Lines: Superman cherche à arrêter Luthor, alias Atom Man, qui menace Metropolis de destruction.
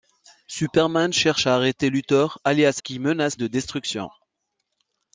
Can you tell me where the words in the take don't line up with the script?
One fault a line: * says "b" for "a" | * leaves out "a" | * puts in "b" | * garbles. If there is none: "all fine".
* leaves out "Atom Man"
* leaves out "Metropolis"